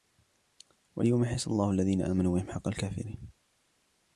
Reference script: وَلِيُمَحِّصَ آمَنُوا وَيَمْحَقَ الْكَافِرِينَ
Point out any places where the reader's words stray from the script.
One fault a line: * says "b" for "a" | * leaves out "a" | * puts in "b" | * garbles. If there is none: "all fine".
* puts in "اللَّهُ الَّذِينَ"